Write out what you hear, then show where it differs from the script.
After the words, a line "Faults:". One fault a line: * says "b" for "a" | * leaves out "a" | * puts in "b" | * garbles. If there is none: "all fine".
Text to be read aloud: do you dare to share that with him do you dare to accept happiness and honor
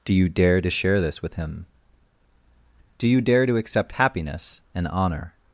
do you dare to share this with him do you dare to accept happiness and honor
Faults:
* says "this" for "that"